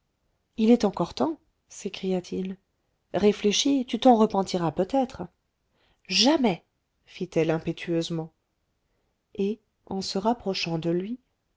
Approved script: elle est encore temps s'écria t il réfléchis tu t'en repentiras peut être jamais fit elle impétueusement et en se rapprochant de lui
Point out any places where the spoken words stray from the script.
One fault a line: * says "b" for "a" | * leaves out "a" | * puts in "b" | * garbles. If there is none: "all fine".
* says "il" for "elle"